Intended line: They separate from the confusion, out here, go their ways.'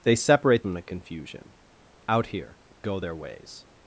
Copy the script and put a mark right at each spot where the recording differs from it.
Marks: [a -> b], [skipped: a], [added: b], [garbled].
They separate from the confusion, out here, go their ways.'